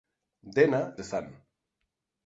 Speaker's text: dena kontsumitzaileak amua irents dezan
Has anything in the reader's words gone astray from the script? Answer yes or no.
yes